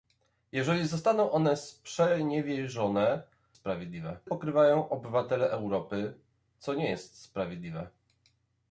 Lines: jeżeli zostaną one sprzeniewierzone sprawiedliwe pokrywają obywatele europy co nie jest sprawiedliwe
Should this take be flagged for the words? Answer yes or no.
no